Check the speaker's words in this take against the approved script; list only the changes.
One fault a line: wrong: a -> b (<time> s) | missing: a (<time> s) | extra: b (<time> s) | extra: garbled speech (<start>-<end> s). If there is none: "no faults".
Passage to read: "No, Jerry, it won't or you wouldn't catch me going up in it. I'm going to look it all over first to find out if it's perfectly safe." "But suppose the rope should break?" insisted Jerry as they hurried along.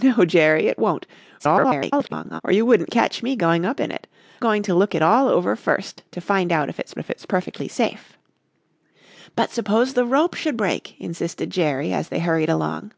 extra: garbled speech (1.4-2.4 s)
missing: I'm (4.0 s)
extra: if it's (7.0 s)